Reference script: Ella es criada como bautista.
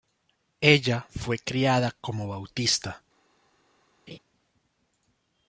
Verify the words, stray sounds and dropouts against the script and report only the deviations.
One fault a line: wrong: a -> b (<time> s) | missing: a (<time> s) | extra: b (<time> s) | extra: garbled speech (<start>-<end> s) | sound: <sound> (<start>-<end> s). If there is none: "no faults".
wrong: es -> fue (1.1 s)
sound: laugh (4.1-4.2 s)